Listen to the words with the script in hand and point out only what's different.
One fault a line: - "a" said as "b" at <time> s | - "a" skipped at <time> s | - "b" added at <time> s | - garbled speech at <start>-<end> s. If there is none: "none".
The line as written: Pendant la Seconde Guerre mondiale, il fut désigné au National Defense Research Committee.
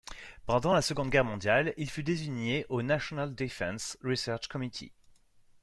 none